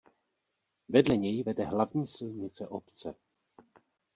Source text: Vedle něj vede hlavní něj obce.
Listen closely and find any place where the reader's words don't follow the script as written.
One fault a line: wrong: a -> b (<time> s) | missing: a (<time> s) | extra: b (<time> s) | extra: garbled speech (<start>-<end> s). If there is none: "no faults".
wrong: něj -> silnice (2.1 s)